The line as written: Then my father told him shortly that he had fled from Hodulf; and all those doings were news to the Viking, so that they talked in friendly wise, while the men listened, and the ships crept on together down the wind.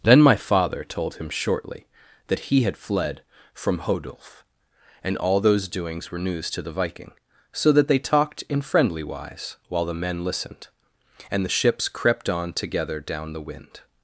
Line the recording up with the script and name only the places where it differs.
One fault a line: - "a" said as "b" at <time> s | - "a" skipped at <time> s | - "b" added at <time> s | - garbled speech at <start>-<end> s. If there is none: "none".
none